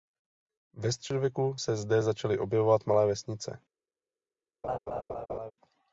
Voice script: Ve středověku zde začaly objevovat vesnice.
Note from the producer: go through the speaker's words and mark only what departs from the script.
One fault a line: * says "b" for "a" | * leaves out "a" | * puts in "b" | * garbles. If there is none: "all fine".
* puts in "se"
* puts in "malé"